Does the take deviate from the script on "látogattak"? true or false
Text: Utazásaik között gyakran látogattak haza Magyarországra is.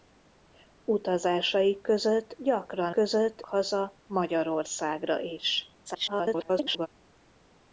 true